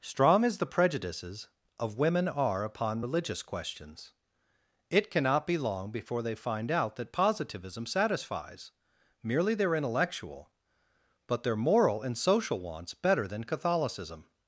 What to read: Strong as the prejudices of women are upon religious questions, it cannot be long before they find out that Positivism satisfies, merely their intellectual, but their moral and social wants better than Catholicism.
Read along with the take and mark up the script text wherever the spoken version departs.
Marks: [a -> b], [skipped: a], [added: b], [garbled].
Strong as the prejudices of women are upon religious questions, it cannot be long before they find out that Positivism satisfies, merely their intellectual, but their moral and social wants better than Catholicism.